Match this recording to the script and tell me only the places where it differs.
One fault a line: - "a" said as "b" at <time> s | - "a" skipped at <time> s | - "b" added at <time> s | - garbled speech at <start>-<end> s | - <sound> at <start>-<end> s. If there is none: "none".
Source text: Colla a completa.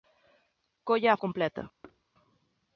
- thud at 1.8-2.0 s